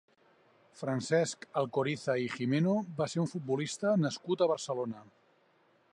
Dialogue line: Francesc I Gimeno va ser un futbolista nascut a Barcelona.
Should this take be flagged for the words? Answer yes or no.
yes